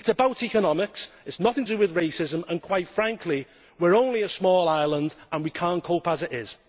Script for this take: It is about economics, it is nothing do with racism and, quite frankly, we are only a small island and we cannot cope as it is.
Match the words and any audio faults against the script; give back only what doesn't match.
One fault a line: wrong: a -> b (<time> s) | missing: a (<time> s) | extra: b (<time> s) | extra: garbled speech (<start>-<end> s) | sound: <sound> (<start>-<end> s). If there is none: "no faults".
no faults